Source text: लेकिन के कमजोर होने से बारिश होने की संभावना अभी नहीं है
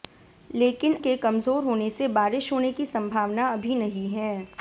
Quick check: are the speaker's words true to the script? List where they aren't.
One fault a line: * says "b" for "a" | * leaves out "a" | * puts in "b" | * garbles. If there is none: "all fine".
all fine